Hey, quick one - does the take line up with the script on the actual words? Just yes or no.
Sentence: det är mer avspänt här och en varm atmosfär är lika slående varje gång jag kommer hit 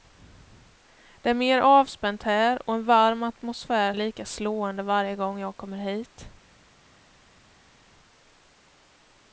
yes